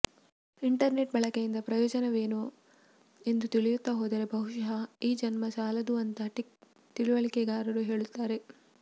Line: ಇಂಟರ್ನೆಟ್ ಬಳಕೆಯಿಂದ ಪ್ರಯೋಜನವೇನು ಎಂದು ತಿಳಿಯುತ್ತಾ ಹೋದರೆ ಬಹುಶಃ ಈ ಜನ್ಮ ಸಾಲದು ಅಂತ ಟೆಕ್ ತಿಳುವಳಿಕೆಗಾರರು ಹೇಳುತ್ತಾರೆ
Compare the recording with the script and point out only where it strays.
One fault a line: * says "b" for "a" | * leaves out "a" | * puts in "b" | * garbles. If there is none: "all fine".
all fine